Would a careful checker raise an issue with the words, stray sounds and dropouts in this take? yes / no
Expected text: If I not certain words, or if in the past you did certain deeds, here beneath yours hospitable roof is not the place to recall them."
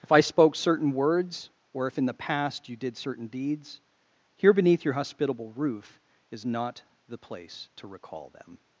yes